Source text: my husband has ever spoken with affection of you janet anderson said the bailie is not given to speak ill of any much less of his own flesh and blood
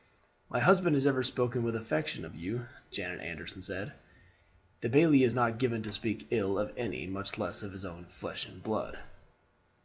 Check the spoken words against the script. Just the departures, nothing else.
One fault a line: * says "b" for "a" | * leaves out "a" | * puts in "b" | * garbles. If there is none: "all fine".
all fine